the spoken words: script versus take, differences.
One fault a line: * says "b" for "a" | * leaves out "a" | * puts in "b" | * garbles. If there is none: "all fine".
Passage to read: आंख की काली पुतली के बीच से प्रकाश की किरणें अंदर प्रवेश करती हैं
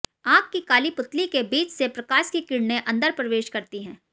all fine